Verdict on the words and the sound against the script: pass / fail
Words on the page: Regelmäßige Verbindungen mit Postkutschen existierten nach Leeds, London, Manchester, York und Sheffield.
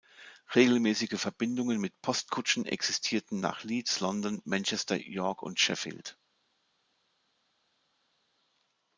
pass